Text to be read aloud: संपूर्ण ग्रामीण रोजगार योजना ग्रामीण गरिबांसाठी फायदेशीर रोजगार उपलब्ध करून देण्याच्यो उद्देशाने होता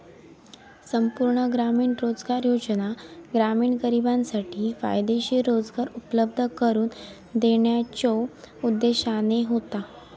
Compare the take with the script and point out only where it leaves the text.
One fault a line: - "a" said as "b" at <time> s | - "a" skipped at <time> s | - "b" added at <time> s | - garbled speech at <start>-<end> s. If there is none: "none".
none